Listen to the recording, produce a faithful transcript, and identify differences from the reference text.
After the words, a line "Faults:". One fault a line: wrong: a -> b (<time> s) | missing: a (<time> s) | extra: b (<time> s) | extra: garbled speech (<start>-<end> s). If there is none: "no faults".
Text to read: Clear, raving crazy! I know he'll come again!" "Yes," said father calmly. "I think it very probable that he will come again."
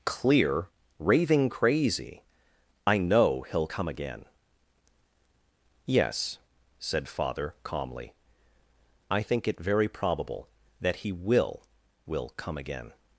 Clear, raving crazy! I know he'll come again!" "Yes," said father calmly. "I think it very probable that he will will come again."
Faults:
extra: will (12.1 s)